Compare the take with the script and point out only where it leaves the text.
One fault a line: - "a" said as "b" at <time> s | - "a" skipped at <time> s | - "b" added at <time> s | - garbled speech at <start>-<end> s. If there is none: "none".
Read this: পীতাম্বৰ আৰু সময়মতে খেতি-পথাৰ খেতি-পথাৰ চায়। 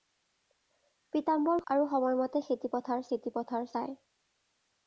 none